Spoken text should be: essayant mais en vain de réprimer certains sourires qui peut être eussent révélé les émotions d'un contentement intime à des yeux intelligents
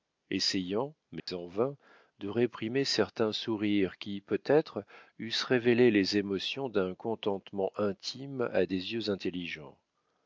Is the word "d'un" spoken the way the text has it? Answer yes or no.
yes